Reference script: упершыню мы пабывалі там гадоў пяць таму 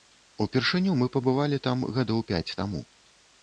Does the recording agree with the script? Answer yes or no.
yes